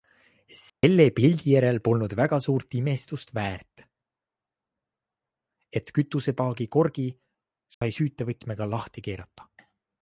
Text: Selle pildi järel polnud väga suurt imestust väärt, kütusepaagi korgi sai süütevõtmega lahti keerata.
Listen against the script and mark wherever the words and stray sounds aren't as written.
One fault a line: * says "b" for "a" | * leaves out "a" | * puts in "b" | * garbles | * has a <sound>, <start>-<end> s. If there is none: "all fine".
* has a dropout, 0.7-0.8 s
* puts in "et"
* has a dropout, 7.7-7.8 s